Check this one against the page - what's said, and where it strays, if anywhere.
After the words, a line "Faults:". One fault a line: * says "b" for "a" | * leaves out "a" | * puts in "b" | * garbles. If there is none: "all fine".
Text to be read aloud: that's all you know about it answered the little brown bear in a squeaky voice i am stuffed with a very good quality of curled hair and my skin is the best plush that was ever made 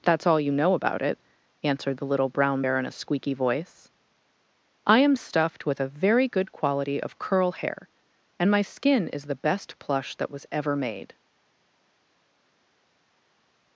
that's all you know about it answered the little brown bear in a squeaky voice i am stuffed with a very good quality of curl hair and my skin is the best plush that was ever made
Faults:
* says "curl" for "curled"